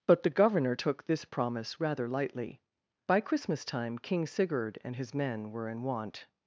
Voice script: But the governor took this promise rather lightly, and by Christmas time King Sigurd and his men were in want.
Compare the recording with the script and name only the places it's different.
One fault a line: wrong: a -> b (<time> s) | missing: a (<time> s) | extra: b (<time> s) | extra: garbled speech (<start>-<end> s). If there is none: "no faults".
missing: and (2.6 s)